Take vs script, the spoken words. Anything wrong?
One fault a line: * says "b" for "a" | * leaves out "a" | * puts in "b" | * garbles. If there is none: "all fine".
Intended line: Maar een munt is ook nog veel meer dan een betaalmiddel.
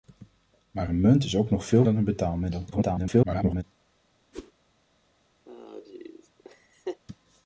* leaves out "meer"
* garbles